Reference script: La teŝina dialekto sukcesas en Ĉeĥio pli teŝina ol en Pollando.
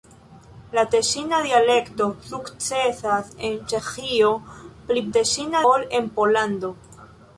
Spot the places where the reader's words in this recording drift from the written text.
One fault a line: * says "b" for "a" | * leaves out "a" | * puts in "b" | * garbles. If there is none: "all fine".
all fine